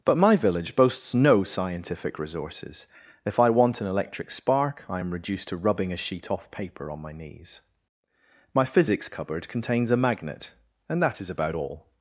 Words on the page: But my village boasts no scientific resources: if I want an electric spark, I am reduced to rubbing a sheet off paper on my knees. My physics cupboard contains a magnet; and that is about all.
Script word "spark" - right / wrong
right